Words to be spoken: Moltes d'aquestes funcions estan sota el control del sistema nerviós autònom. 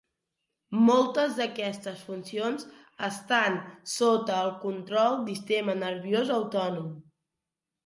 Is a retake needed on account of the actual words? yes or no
yes